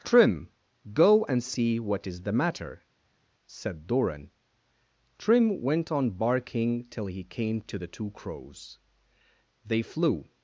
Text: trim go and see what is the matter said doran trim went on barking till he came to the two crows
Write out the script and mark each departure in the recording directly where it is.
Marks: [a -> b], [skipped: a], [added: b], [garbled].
trim go and see what is the matter said doran trim went on barking till he came to the two crows [added: they flew]